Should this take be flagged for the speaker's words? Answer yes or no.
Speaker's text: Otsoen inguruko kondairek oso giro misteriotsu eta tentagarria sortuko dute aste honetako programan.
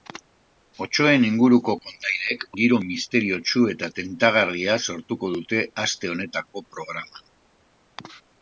yes